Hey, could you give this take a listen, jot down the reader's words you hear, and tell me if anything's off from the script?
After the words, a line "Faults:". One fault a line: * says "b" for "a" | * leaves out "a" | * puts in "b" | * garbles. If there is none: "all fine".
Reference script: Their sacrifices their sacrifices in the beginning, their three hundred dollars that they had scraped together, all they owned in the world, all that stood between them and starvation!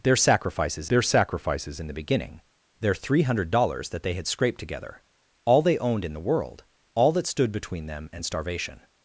Their sacrifices their sacrifices in the beginning, their three hundred dollars that they had scraped together, all they owned in the world, all that stood between them and starvation!
Faults:
all fine